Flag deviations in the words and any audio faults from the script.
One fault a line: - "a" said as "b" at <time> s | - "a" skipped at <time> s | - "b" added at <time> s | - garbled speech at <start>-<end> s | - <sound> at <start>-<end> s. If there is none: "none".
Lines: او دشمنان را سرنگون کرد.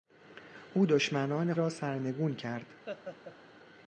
- laugh at 2.9-3.4 s